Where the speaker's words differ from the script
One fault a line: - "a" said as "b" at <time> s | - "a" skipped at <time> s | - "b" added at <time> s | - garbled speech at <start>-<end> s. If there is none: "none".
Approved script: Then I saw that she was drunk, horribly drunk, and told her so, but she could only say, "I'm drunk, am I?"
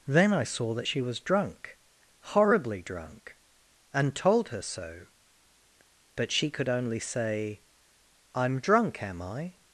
none